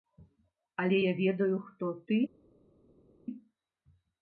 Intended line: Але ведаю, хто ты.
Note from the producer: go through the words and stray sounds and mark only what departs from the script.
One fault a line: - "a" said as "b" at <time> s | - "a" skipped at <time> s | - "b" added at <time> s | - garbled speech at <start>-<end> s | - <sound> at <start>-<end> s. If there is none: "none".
- "я" added at 1.0 s